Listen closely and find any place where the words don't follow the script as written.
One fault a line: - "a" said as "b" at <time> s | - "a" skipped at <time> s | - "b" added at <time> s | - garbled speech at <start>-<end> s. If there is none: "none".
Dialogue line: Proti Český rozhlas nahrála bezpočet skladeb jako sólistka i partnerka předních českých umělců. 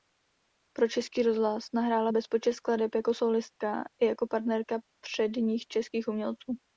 - "Proti" said as "Pro" at 0.7 s
- "jako" added at 4.0 s